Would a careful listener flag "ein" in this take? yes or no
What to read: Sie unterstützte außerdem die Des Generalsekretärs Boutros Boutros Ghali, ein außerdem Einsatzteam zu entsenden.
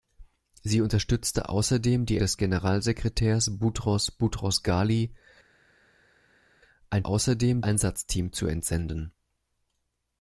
no